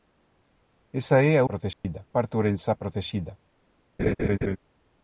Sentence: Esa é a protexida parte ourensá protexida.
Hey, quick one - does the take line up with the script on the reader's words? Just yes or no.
yes